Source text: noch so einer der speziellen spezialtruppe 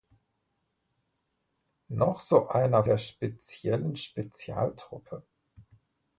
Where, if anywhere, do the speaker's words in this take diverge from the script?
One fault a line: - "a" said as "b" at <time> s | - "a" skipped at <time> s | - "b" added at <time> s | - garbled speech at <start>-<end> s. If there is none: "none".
none